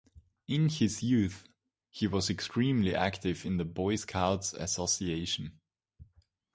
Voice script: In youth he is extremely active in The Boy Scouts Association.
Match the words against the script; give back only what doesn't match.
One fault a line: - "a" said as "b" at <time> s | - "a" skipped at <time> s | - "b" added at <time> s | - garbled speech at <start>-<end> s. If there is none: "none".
- "his" added at 0.7 s
- "is" said as "was" at 2.1 s